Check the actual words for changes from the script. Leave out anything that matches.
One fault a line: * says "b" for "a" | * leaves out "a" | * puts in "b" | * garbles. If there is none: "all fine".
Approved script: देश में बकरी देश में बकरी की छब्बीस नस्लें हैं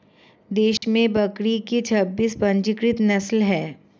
* leaves out "देश में बकरी"
* puts in "पंजीकृत"